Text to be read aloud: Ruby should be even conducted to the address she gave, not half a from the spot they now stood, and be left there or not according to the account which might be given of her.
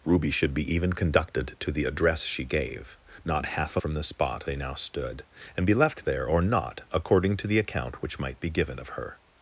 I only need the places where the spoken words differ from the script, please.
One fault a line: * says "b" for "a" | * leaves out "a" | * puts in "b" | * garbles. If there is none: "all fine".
all fine